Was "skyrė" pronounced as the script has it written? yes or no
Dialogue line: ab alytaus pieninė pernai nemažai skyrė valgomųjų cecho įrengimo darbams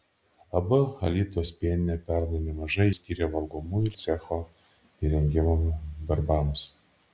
yes